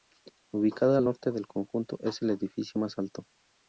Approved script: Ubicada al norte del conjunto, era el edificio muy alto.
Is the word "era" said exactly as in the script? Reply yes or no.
no